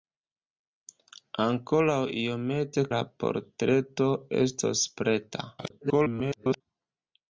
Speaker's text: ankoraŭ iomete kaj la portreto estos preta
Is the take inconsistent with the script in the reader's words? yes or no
yes